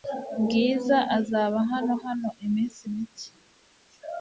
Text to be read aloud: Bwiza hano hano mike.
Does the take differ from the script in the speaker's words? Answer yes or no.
yes